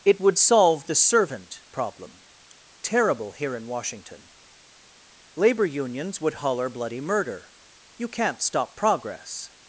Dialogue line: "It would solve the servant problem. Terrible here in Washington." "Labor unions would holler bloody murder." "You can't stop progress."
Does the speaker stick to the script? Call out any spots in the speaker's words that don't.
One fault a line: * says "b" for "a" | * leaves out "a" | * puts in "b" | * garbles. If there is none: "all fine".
all fine